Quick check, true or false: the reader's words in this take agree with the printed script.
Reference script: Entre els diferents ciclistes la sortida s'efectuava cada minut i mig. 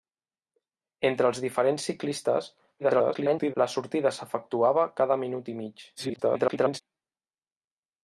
false